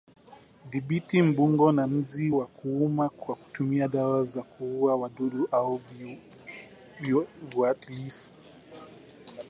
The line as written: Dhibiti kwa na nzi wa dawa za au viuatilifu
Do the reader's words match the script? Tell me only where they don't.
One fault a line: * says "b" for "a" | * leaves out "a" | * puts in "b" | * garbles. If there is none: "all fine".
* says "mbungo" for "kwa"
* puts in "kuuma kwa kutumia"
* puts in "kuua wadudu"